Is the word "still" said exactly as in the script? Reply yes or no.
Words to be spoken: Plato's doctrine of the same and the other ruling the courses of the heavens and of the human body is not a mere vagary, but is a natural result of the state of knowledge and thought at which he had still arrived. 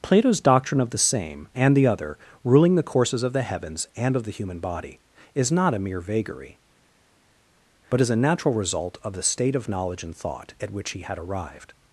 no